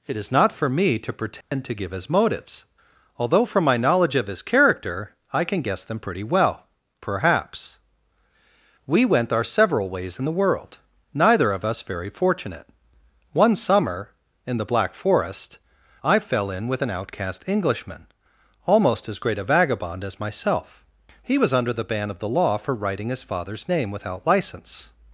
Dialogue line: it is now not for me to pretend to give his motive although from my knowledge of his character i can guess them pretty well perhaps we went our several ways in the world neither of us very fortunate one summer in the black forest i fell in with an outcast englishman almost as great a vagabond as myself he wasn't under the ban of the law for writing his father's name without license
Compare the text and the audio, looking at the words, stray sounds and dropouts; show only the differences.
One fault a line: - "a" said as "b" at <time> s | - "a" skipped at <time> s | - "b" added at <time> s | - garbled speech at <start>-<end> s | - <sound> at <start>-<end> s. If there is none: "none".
- "now" skipped at 0.3 s
- dropout at 1.4-1.5 s
- "motive" said as "motives" at 2.1 s
- "wasn't" said as "was" at 21.4 s